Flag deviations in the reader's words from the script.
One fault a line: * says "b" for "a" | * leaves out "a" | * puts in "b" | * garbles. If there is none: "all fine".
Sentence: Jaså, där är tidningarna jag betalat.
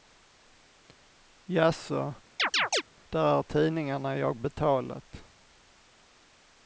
all fine